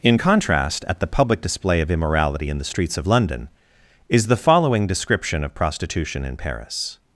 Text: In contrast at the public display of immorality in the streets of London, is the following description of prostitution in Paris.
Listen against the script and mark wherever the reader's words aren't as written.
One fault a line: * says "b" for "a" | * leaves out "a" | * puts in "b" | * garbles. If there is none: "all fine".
all fine